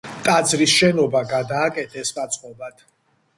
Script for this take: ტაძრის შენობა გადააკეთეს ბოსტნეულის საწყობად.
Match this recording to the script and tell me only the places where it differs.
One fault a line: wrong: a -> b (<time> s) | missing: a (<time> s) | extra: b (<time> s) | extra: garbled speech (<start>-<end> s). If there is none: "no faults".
missing: ბოსტნეულის (2.1 s)